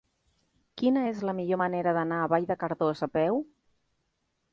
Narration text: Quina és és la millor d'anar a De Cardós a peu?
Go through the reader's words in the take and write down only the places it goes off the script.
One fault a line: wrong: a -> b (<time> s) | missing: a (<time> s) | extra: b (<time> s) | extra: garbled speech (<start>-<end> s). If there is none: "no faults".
missing: és (1.2 s)
extra: manera (1.6 s)
extra: Vall (2.3 s)